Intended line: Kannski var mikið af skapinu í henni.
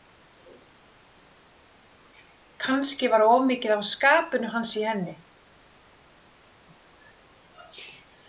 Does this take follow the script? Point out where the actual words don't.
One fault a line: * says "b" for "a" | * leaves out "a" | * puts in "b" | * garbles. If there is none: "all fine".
* puts in "of"
* puts in "hans"